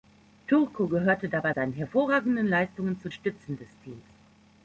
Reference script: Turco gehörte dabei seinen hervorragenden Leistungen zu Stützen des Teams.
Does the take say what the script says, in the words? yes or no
yes